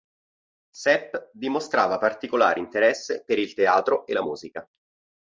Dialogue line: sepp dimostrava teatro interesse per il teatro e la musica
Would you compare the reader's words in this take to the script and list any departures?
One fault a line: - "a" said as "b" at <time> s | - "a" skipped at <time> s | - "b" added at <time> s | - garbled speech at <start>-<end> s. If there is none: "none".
- "teatro" said as "particolare" at 2.0 s